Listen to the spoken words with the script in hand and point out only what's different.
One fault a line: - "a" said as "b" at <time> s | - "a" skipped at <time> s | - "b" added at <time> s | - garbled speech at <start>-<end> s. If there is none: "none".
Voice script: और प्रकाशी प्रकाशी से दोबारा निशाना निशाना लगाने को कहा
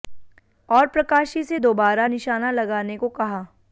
- "प्रकाशी" skipped at 1.4 s
- "निशाना" skipped at 2.5 s